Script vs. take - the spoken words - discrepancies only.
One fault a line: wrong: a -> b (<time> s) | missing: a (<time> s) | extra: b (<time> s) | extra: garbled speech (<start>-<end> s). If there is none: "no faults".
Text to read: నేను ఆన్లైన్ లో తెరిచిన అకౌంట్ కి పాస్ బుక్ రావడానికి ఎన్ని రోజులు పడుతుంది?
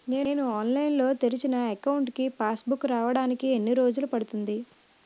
no faults